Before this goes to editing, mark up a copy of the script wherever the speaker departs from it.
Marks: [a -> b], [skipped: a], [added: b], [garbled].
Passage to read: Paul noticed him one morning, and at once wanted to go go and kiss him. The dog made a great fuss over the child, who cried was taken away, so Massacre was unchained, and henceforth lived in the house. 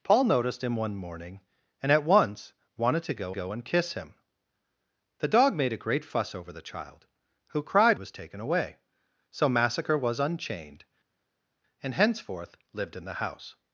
Paul noticed him one morning, and at once wanted to go go and kiss him. The dog made a great fuss over the child, who cried was taken away, so Massacre was unchained, and henceforth lived in the house.